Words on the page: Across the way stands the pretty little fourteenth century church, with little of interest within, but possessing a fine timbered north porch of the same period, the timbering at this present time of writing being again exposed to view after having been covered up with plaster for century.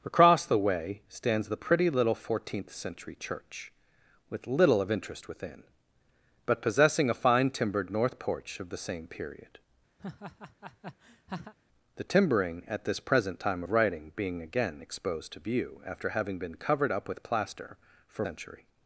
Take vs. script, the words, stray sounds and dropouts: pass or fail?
fail